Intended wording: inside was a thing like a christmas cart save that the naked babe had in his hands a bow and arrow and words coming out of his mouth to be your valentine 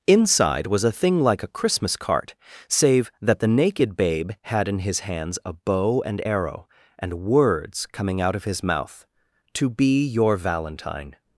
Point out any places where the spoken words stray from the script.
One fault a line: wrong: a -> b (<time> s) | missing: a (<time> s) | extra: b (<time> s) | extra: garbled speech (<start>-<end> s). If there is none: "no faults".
no faults